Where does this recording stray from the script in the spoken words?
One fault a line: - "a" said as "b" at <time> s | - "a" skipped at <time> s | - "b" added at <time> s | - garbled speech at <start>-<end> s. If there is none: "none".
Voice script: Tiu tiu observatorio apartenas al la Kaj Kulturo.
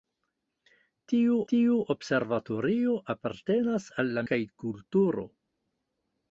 none